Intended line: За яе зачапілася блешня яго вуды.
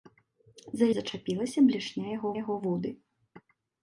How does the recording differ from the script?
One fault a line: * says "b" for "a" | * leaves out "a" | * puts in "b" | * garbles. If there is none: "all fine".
* leaves out "яе"
* puts in "яго"